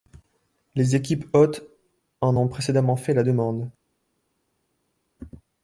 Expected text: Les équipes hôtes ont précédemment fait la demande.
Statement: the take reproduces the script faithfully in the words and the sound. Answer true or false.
false